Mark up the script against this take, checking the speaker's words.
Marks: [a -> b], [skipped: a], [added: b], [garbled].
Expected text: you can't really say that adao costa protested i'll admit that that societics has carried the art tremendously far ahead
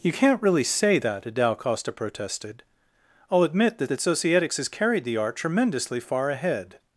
you can't really say that adao costa protested i'll admit that that societics has carried the art tremendously far ahead